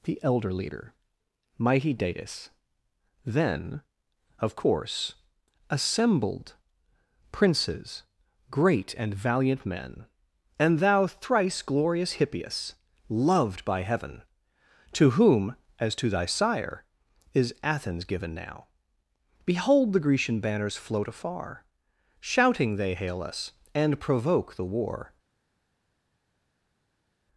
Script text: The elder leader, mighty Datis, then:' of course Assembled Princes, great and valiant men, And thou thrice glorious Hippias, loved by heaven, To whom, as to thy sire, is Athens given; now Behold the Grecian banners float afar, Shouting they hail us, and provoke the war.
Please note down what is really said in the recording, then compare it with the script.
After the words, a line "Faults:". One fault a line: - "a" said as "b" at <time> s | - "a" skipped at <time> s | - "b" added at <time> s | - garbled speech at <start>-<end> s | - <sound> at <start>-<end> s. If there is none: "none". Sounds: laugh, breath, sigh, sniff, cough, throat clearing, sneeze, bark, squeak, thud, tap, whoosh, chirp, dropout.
The elder leader, mighty Datis, then:' of course Assembled Princes, great and valiant men, And thou thrice glorious Hippias, loved by heaven, To whom, as to thy sire, is Athens given; now Behold the Grecian banners float afar, Shouting they hail us, and provoke the war.
Faults:
none